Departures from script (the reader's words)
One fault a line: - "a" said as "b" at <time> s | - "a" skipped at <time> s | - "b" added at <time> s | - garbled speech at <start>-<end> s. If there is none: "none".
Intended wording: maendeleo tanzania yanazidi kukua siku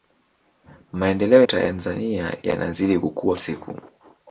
none